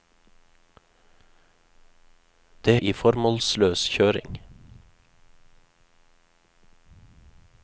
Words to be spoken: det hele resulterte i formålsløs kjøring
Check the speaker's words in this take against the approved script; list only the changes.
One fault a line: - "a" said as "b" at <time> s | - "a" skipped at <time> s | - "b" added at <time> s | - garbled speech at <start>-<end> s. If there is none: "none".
- "hele resulterte" skipped at 2.8 s